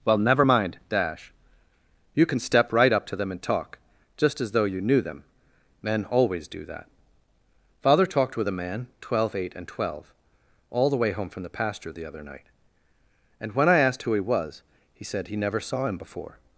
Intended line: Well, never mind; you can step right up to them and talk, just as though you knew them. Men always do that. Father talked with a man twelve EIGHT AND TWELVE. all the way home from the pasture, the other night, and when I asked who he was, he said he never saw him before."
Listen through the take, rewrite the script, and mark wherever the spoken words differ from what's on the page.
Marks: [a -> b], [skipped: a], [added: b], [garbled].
Well, never mind; [added: dash] you can step right up to them and talk, just as though you knew them. Men always do that. Father talked with a man twelve EIGHT AND TWELVE. all the way home from the pasture, the other night, and when I asked who he was, he said he never saw him before."